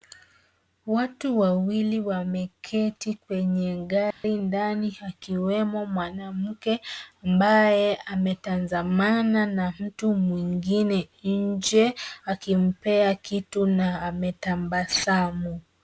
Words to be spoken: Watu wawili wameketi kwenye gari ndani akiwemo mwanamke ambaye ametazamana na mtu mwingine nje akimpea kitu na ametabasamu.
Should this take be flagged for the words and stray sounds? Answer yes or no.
yes